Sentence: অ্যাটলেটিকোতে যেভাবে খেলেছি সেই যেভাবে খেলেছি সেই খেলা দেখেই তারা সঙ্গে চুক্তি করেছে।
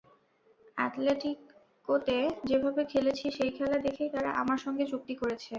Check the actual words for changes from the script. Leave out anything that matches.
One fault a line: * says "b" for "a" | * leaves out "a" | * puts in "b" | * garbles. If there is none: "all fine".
* leaves out "যেভাবে খেলেছি সেই"
* puts in "আমার"